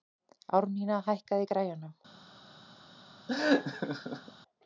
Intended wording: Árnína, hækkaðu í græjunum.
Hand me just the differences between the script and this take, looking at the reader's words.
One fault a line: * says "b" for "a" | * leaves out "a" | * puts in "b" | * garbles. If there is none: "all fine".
all fine